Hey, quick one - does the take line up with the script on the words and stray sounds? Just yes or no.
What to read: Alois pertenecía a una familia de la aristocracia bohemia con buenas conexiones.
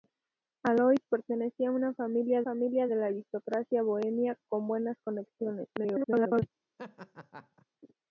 no